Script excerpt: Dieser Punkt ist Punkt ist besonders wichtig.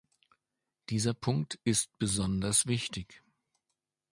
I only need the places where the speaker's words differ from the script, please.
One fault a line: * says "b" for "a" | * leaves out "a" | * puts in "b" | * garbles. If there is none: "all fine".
* leaves out "Punkt ist"